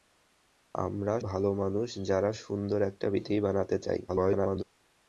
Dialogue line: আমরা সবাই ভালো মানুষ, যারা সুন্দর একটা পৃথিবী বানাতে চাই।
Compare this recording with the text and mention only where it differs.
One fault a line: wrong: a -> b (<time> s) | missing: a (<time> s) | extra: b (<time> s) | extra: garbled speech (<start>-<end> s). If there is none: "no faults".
missing: সবাই (1.1 s)
extra: garbled speech (4.1-4.6 s)